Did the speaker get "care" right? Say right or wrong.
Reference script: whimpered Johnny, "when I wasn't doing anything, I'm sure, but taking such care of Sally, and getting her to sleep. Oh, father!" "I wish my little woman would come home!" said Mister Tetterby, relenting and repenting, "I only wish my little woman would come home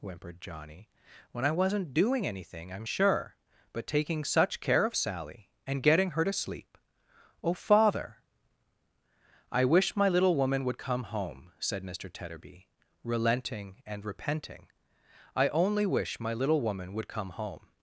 right